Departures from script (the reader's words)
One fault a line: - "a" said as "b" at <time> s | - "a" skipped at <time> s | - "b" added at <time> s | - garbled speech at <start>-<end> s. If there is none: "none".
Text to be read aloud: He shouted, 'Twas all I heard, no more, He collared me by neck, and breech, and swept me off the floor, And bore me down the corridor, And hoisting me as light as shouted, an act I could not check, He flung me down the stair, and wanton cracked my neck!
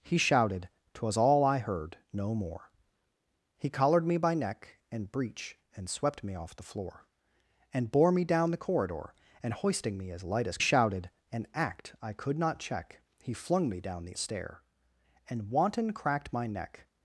none